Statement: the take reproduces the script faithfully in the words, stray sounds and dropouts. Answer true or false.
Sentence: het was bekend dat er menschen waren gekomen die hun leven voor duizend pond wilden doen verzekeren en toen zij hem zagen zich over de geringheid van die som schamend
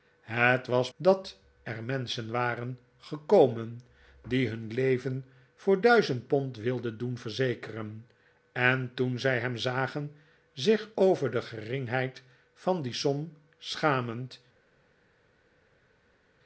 false